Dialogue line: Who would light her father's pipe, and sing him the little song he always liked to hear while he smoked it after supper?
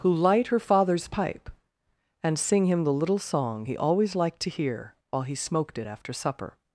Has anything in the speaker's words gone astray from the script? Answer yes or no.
yes